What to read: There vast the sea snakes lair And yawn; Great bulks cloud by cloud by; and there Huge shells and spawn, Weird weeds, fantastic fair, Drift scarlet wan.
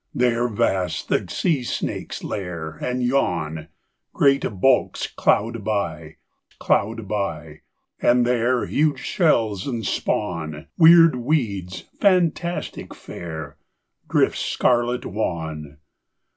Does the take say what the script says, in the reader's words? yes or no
yes